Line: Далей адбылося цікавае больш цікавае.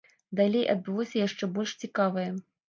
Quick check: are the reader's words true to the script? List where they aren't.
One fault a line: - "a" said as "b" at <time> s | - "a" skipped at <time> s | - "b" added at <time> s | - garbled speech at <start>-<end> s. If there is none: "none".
- "цікавае" said as "яшчэ" at 1.3 s